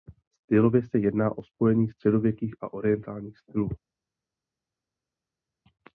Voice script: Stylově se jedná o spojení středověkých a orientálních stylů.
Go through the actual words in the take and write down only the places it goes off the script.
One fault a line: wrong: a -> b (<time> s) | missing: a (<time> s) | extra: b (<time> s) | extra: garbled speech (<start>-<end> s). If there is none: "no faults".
no faults